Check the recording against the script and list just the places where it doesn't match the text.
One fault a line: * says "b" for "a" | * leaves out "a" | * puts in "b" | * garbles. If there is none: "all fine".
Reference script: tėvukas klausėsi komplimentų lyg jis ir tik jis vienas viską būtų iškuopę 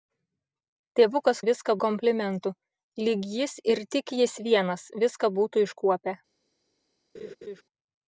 * says "viską" for "klausėsi"